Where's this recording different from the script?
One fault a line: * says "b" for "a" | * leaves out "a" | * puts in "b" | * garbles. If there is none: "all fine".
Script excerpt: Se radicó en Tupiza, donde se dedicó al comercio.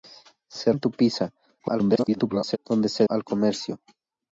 * leaves out "radicó"
* garbles
* leaves out "dedicó"